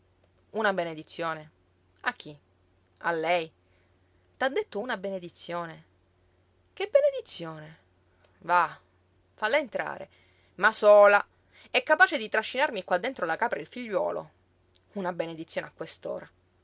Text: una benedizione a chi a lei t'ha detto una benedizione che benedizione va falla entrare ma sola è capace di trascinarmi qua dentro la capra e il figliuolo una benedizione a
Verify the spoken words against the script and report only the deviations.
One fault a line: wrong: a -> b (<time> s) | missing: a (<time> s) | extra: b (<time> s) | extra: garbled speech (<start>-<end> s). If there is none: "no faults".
no faults